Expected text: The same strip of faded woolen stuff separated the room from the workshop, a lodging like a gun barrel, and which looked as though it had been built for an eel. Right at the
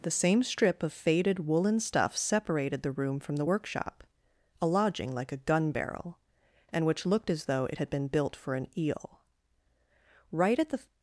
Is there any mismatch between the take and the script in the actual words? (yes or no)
no